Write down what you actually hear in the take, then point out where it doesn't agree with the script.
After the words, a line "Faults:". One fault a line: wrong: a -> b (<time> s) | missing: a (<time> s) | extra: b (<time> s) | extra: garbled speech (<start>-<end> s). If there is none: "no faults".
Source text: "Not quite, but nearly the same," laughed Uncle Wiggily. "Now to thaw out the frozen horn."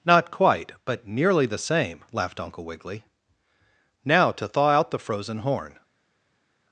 "Not quite, but nearly the same," laughed Uncle Wiggily. "Now to thaw out the frozen horn."
Faults:
no faults